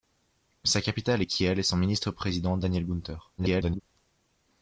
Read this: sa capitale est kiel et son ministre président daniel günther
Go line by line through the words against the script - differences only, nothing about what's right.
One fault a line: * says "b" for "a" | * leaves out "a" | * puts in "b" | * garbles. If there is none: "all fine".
* garbles